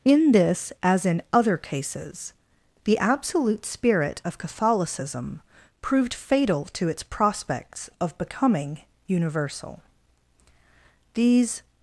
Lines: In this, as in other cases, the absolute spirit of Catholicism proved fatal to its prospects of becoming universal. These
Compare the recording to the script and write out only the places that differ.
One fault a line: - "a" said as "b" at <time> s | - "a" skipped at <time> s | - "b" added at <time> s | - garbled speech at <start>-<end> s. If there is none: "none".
none